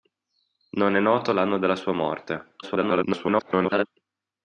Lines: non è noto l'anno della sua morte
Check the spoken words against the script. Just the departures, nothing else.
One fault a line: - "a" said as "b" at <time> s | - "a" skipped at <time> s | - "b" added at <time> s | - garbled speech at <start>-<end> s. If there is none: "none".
- garbled speech at 2.6-3.9 s